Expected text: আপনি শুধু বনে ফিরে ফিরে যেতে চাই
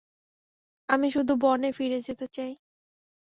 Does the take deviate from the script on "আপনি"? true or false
true